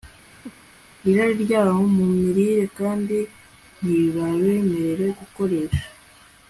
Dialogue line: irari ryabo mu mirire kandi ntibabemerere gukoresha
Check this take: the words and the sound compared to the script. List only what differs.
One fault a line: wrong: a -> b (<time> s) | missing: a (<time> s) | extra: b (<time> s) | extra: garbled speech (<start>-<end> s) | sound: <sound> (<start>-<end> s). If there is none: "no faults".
sound: laugh (0.3-0.7 s)